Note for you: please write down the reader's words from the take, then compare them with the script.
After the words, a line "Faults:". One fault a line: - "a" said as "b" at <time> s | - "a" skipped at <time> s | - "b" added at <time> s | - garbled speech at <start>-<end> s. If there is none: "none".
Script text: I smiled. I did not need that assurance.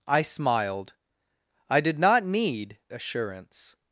I smiled. I did not need assurance.
Faults:
- "that" skipped at 2.8 s